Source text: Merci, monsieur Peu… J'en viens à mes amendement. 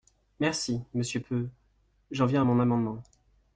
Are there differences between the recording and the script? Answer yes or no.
yes